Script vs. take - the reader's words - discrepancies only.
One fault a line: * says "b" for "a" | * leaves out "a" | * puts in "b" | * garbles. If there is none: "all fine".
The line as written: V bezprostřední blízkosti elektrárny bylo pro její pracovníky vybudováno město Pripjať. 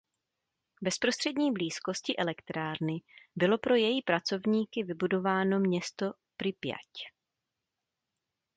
all fine